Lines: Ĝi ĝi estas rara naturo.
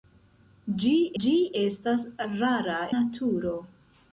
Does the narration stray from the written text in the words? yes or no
no